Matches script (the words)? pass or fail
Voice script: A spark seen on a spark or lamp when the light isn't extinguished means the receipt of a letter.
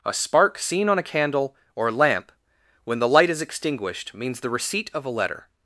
fail